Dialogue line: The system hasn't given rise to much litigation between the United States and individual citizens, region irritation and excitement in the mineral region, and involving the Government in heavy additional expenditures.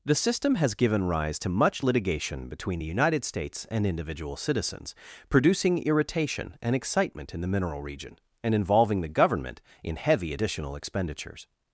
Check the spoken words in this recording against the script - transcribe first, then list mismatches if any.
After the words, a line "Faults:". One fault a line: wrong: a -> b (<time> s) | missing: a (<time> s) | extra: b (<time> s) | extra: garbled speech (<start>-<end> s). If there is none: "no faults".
The system has given rise to much litigation between the United States and individual citizens, producing irritation and excitement in the mineral region, and involving the Government in heavy additional expenditures.
Faults:
wrong: hasn't -> has (0.6 s)
wrong: region -> producing (5.3 s)